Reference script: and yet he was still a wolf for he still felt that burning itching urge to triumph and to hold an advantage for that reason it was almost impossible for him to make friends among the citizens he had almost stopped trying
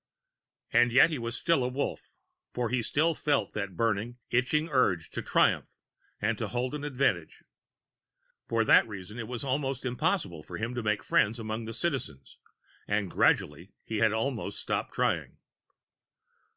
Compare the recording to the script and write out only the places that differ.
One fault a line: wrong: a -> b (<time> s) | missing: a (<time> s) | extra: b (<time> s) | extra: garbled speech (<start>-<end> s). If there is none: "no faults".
extra: and gradually (12.9 s)